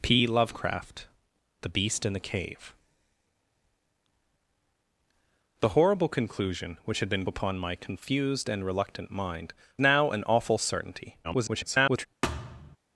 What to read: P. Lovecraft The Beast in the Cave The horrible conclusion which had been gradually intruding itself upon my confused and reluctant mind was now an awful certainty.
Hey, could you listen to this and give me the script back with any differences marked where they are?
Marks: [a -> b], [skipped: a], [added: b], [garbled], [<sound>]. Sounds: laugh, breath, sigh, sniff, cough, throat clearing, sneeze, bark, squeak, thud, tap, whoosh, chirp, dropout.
P. Lovecraft The Beast in the Cave The horrible conclusion which had been [skipped: gradually intruding itself] upon my confused and reluctant mind [skipped: was] now an awful certainty. [garbled] [thud]